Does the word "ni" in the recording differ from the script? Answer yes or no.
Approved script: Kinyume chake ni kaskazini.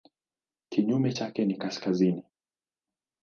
no